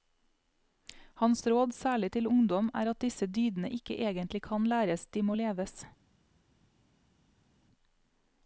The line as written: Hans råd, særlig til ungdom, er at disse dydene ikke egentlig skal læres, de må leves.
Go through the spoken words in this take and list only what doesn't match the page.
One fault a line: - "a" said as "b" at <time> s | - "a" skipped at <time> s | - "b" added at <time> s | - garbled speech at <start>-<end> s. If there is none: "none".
- "skal" said as "kan" at 4.4 s